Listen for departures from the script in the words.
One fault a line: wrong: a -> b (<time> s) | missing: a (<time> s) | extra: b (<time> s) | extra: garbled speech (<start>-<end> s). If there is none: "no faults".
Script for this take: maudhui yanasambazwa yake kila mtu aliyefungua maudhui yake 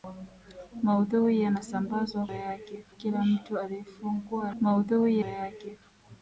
no faults